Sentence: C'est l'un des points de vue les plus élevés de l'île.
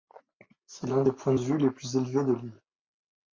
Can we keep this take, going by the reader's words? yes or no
yes